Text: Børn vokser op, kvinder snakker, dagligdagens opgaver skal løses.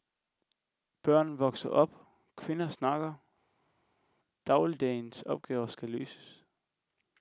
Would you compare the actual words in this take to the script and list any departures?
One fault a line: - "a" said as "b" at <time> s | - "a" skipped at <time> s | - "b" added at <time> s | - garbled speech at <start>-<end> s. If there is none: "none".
none